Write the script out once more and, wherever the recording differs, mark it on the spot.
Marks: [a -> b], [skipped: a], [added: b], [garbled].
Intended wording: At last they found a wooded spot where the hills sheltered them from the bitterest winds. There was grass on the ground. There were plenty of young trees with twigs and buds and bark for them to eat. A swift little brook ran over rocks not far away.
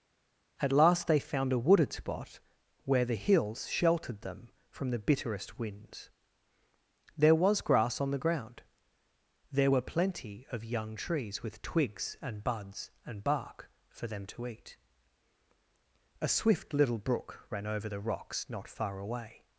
At last they found a wooded spot where the hills sheltered them from the bitterest winds. There was grass on the ground. There were plenty of young trees with twigs and buds and bark for them to eat. A swift little brook ran over [added: the] rocks not far away.